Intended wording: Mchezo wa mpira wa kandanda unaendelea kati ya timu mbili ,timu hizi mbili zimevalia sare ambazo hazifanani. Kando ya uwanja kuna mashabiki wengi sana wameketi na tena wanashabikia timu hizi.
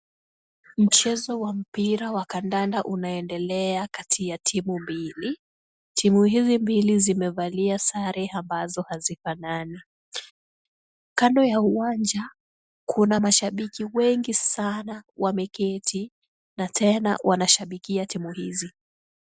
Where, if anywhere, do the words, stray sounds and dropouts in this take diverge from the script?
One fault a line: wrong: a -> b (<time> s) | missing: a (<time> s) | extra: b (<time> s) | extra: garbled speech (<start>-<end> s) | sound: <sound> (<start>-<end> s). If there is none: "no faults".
no faults